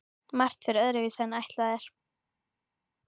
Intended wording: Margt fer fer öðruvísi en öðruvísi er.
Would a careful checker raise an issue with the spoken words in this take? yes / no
yes